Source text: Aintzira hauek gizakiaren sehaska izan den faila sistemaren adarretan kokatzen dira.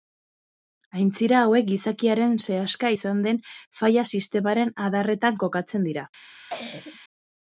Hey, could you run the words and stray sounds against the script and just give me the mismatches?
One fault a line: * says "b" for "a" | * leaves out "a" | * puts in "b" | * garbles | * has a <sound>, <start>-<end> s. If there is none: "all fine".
* has a cough, 6.3-7.0 s